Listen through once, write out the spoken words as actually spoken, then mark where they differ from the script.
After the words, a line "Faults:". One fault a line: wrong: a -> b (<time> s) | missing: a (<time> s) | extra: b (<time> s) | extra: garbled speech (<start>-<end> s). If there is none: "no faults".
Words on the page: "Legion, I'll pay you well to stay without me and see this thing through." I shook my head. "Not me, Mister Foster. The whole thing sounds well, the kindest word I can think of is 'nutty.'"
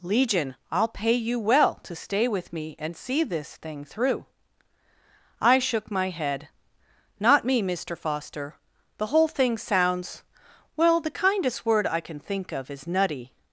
"Legion, I'll pay you well to stay with me and see this thing through." I shook my head. "Not me, Mister Foster. The whole thing sounds well, the kindest word I can think of is 'nutty.'"
Faults:
wrong: without -> with (2.3 s)